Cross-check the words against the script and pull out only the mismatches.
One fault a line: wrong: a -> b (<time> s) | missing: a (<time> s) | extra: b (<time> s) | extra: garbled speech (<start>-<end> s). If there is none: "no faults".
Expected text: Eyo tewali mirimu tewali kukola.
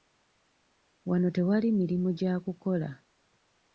wrong: Eyo -> Wano (1.1 s)
wrong: tewali -> gya (2.2 s)